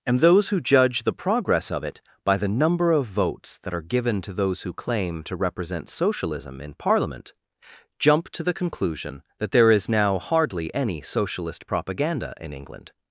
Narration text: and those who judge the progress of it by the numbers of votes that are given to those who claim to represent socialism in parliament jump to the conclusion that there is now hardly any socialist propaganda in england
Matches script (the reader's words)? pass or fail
fail